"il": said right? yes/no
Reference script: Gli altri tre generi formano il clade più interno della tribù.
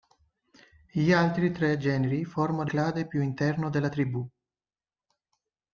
no